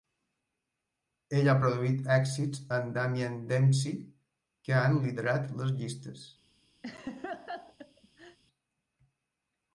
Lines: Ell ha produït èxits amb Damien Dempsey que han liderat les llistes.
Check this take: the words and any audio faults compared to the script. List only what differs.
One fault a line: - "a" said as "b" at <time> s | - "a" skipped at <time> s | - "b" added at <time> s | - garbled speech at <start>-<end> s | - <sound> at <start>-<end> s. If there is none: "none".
- laugh at 6.8-8.4 s